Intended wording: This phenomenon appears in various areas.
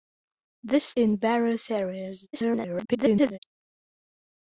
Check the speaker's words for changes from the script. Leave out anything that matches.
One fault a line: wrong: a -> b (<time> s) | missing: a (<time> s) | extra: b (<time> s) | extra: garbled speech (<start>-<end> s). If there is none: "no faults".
missing: phenomenon appears (0.9 s)
extra: garbled speech (2.3-3.4 s)